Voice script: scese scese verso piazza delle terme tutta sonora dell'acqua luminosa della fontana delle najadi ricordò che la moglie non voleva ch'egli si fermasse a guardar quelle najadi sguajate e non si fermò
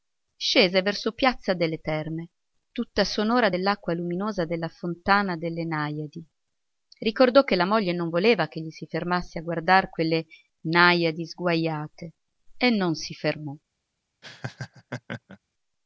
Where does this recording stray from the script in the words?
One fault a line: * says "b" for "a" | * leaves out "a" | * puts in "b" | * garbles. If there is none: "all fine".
* leaves out "scese"